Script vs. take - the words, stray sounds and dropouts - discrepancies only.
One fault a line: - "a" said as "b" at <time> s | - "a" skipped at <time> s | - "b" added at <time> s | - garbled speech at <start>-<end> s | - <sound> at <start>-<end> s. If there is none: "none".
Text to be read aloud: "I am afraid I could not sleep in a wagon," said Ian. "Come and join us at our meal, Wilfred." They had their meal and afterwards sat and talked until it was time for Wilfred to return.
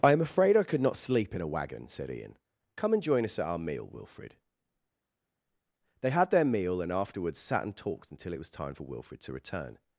none